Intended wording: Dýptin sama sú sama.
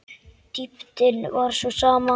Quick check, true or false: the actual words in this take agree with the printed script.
false